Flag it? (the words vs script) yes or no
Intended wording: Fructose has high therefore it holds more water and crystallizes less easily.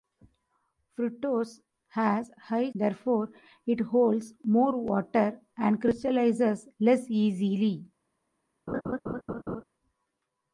no